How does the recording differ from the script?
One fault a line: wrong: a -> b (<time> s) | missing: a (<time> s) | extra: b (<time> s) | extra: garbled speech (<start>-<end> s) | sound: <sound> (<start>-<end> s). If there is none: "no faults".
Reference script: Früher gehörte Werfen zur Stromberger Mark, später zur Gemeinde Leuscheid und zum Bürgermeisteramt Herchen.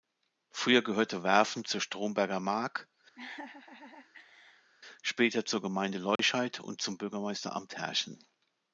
sound: laugh (3.2-4.7 s)
sound: dropout (6.2-6.2 s)